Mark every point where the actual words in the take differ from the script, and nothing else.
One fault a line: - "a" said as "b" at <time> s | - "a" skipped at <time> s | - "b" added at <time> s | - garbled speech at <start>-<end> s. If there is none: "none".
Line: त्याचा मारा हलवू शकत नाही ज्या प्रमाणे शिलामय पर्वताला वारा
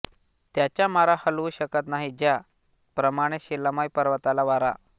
none